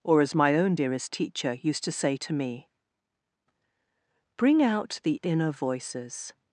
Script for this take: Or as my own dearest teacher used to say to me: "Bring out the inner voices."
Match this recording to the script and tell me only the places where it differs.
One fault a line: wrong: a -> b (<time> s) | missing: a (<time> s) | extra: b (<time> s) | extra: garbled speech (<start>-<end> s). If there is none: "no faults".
no faults